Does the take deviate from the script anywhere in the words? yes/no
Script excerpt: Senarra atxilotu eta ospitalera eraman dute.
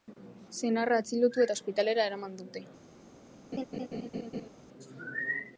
no